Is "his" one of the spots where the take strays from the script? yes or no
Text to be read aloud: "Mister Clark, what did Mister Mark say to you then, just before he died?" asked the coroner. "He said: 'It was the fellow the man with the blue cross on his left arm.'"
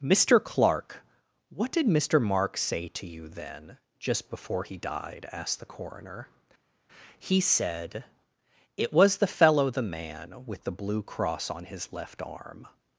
no